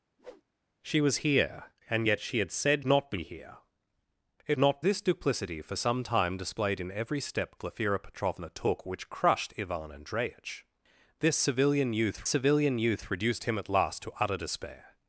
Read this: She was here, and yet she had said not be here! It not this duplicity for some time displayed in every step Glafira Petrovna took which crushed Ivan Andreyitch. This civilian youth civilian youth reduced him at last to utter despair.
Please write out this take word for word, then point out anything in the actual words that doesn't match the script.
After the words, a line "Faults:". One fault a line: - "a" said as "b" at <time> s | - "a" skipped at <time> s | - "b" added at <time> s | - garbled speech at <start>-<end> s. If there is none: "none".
She was here, and yet she had said not be here! It not this duplicity for some time displayed in every step Glafira Petrovna took which crushed Ivan Andreyitch. This civilian youth civilian youth reduced him at last to utter despair.
Faults:
none